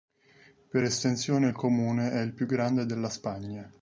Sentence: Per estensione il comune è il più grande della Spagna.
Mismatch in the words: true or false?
false